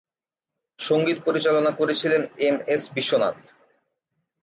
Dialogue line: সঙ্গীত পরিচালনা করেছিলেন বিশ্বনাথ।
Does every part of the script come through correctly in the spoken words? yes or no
no